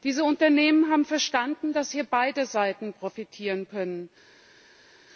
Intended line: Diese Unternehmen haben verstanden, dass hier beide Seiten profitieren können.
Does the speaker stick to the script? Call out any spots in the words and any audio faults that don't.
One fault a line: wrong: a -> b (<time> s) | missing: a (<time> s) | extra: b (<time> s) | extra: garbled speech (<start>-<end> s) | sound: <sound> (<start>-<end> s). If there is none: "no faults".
no faults